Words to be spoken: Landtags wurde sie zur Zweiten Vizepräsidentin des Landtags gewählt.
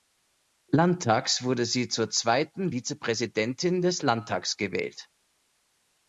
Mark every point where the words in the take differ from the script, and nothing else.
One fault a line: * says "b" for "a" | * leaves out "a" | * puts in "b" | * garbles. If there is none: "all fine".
all fine